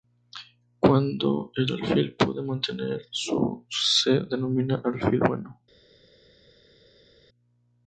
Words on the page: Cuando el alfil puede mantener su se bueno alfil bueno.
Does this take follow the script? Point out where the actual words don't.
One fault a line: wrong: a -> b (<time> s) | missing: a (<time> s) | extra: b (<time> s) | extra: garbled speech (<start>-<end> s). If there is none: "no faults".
wrong: bueno -> denomina (4.2 s)